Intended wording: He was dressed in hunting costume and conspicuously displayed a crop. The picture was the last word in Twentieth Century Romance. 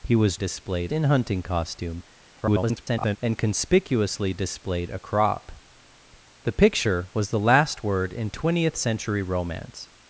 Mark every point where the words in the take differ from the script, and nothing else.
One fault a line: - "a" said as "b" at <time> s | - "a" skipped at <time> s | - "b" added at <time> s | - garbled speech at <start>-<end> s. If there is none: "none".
- "dressed" said as "displayed" at 0.3 s
- garbled speech at 2.4-3.2 s